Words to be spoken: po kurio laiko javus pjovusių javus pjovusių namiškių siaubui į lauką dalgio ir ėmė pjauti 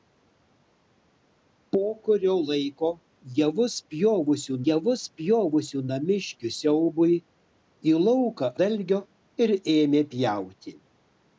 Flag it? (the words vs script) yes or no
no